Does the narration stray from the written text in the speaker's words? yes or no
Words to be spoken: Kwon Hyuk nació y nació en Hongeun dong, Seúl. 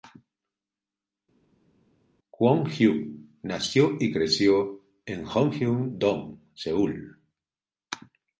yes